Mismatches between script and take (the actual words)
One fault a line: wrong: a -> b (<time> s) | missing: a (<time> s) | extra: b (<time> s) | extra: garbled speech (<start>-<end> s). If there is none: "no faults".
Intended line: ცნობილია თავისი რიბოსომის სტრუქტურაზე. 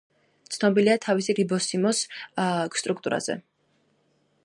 no faults